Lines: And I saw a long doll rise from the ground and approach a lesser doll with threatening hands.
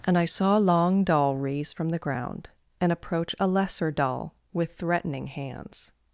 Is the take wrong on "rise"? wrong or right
wrong